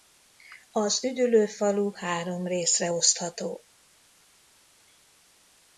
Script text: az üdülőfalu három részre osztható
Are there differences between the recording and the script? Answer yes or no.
no